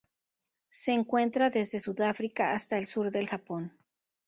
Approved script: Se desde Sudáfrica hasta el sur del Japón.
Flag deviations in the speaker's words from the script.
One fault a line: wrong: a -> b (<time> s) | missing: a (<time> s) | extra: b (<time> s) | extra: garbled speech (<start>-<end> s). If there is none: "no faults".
extra: encuentra (0.9 s)